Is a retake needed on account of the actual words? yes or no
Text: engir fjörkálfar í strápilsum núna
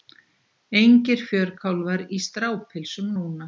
no